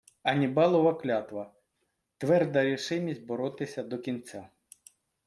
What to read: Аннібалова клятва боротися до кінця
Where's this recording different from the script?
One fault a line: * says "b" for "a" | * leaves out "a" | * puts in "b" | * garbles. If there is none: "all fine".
* puts in "тверда рішимість"